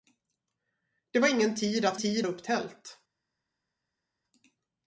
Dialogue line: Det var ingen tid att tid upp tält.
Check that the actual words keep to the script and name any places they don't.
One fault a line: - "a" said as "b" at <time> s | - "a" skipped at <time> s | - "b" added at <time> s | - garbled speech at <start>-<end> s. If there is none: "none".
none